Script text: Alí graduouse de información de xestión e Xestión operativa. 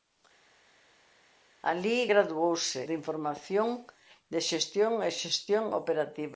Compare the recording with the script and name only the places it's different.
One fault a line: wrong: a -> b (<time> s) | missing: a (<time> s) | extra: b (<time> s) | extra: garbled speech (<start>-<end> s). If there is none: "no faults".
no faults